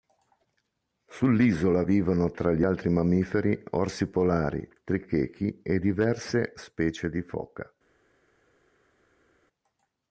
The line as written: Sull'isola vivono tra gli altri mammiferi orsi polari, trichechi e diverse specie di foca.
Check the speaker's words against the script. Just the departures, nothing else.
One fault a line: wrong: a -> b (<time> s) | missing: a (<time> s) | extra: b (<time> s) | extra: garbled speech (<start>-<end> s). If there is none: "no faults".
no faults